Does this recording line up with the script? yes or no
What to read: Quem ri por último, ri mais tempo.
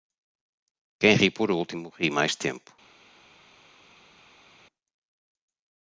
yes